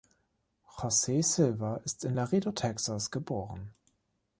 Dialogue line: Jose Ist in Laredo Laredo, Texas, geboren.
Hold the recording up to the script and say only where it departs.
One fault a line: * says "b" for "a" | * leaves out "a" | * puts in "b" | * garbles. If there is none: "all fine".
* puts in "Silva"
* leaves out "Laredo"